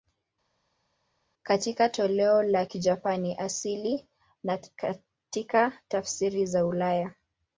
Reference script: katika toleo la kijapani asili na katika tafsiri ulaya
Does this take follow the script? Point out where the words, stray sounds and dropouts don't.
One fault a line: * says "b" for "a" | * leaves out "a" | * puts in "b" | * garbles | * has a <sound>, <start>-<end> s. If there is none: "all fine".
* puts in "za"